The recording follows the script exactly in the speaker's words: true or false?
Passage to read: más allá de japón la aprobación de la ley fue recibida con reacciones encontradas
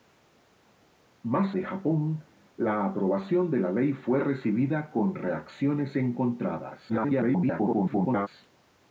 false